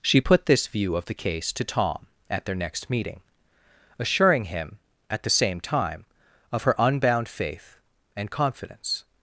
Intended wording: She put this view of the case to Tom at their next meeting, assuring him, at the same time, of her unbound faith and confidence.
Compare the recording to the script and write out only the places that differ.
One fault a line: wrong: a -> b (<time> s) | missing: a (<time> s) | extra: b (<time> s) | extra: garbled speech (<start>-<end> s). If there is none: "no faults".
no faults